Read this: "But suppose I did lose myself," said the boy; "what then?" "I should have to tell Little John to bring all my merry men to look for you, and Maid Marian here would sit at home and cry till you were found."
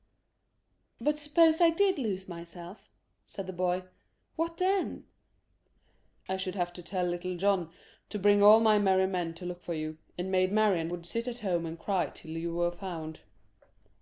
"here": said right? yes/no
no